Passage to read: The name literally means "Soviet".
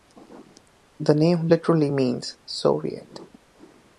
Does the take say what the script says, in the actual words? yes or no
yes